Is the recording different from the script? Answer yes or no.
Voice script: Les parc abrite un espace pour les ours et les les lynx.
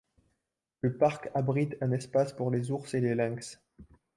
yes